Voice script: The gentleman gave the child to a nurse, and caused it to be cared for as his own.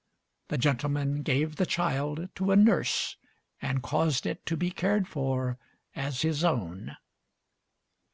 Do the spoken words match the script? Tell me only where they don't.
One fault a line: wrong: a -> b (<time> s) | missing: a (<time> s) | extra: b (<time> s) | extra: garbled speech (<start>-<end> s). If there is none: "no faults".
no faults